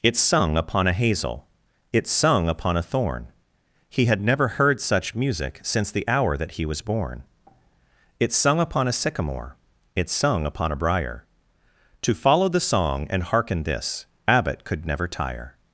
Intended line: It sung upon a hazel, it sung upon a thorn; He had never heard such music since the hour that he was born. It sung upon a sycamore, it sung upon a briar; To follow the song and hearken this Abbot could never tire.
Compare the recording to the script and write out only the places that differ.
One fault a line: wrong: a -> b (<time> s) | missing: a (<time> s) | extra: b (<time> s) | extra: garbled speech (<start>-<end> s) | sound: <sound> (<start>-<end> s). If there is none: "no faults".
no faults